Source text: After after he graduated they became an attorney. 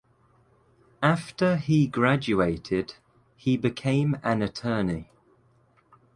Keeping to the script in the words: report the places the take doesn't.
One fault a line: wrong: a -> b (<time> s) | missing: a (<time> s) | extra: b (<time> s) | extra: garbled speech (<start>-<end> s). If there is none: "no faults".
missing: after (1.6 s)
wrong: they -> he (3.4 s)